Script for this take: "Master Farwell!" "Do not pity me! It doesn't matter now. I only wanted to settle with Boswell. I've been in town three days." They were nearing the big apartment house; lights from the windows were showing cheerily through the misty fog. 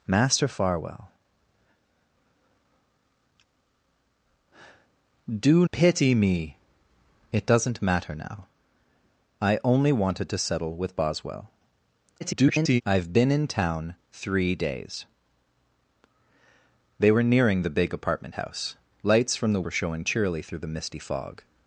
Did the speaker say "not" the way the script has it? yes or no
no